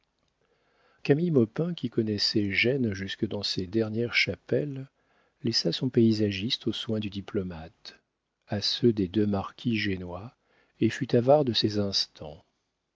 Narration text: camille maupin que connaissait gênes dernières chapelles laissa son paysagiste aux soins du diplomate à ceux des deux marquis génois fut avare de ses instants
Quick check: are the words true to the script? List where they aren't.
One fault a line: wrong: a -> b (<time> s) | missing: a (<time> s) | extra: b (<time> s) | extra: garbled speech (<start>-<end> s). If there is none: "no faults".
wrong: que -> qui (1.8 s)
extra: jusque dans ses (2.9 s)
extra: et (10.8 s)